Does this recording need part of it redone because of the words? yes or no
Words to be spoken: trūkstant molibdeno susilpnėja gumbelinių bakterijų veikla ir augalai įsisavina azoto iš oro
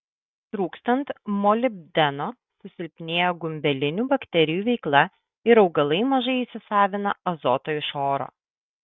yes